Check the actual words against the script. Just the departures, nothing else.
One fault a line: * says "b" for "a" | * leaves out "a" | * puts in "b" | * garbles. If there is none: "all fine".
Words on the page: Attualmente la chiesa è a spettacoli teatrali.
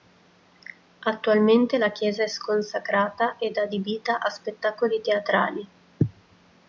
* puts in "sconsacrata ed adibita"